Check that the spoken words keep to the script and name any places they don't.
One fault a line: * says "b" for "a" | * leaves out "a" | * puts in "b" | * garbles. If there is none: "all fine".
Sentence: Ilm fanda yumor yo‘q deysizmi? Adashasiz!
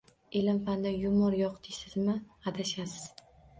all fine